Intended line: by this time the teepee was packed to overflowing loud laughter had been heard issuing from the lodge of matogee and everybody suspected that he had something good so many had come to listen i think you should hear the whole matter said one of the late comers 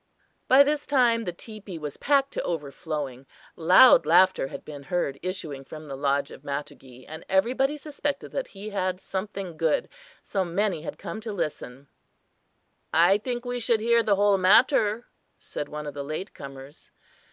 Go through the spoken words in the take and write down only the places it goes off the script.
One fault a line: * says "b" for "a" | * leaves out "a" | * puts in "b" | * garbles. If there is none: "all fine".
* says "we" for "you"